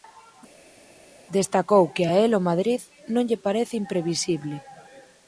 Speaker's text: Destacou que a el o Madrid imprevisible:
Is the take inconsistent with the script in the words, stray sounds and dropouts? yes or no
yes